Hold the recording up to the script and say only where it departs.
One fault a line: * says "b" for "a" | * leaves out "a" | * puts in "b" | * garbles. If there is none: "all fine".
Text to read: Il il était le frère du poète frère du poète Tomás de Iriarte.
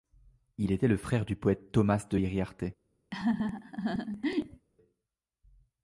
* leaves out "il"
* leaves out "frère du poète"